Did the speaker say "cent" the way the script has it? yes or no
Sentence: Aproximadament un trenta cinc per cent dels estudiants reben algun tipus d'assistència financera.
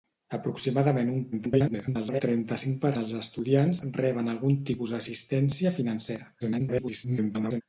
no